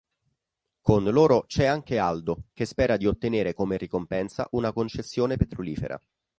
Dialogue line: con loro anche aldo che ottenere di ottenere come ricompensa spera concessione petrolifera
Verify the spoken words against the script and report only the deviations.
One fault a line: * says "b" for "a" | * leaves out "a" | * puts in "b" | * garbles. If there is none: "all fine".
* puts in "c'è"
* says "spera" for "ottenere"
* says "una" for "spera"